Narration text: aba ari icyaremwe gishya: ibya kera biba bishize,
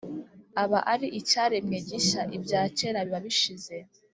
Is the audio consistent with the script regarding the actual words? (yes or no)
yes